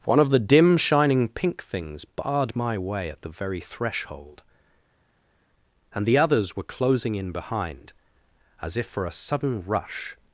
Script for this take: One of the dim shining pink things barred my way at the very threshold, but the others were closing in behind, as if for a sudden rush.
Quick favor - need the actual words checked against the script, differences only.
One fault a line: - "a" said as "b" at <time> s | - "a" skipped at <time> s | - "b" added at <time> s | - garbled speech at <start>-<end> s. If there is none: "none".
- "but" said as "and" at 5.9 s